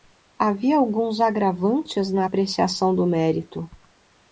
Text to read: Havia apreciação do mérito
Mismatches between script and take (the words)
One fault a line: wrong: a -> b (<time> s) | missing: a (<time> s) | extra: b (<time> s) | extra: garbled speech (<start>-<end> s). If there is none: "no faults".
extra: alguns agravantes na (0.8 s)